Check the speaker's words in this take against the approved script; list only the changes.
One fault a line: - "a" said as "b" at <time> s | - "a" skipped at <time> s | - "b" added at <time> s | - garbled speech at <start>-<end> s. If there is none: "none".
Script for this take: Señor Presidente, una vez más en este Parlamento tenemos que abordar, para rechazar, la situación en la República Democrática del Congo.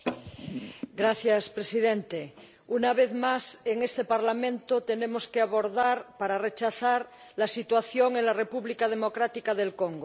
none